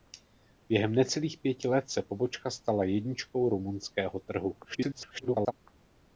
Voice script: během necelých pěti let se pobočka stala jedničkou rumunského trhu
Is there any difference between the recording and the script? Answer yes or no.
yes